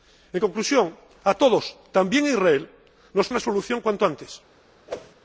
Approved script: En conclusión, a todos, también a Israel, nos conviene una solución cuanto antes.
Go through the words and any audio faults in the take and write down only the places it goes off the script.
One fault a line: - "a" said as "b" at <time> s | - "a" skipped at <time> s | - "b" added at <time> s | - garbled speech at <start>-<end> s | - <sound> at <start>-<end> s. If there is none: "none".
- "conviene" skipped at 3.3 s
- whoosh at 4.9-5.1 s